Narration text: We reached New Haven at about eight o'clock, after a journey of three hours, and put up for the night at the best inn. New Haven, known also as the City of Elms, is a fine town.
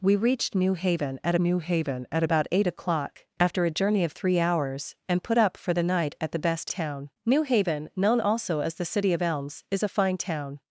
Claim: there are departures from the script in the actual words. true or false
true